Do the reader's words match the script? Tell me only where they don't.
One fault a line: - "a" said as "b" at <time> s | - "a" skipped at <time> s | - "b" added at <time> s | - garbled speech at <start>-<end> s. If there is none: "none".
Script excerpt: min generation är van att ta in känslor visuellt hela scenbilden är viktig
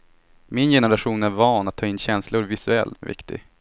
- "hela scenbilden" skipped at 3.0 s